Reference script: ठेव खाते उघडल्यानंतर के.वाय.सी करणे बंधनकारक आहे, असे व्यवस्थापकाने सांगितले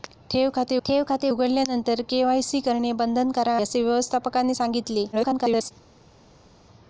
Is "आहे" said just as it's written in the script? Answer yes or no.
no